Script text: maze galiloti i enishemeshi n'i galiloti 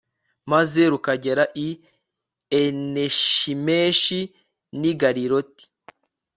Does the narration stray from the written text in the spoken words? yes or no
yes